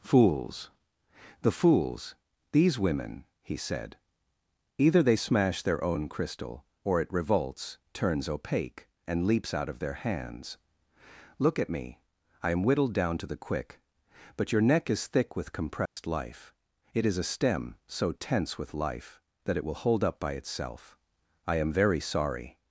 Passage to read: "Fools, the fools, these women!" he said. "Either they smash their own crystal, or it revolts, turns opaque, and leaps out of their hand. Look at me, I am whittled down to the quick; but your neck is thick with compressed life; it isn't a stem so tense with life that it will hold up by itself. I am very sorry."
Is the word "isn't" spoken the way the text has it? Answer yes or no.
no